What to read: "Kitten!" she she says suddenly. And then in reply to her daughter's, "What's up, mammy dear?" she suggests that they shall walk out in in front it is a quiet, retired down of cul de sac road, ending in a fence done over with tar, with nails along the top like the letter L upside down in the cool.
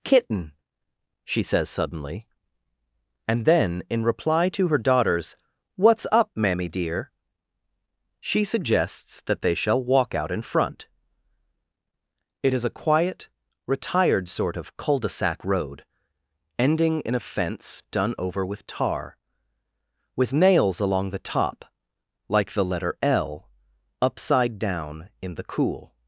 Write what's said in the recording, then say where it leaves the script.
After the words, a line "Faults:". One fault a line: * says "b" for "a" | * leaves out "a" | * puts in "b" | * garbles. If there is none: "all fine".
"Kitten!" she says suddenly. And then in reply to her daughter's, "What's up, mammy dear?" she suggests that they shall walk out in front it is a quiet, retired sort of cul de sac road, ending in a fence done over with tar, with nails along the top like the letter L upside down in the cool.
Faults:
* leaves out "she"
* leaves out "in"
* says "sort" for "down"